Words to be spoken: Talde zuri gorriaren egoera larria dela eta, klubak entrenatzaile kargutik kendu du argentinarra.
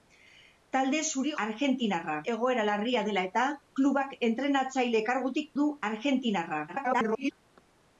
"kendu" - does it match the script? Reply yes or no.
no